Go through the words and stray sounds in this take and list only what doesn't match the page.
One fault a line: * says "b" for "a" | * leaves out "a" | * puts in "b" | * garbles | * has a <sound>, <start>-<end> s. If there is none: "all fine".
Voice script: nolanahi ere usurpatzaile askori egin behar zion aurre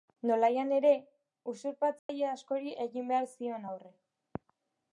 * has a dropout, 2.0-2.1 s